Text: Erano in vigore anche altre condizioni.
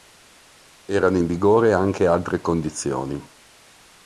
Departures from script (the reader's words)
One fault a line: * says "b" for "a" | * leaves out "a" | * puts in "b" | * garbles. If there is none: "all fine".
all fine